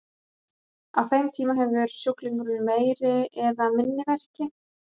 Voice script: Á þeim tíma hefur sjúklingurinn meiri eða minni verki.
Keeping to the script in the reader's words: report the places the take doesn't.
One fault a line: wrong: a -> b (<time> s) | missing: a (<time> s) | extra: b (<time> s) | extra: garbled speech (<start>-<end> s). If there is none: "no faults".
no faults